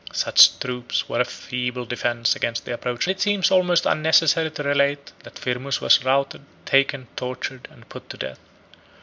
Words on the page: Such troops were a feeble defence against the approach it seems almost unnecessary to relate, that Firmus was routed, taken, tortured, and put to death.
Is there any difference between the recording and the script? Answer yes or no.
no